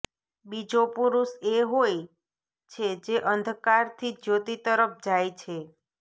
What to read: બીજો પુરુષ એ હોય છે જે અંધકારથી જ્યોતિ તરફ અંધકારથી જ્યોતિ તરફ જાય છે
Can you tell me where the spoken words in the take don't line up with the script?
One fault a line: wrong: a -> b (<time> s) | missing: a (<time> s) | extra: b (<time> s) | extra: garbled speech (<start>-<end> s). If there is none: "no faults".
missing: અંધકારથી જ્યોતિ તરફ (5.0 s)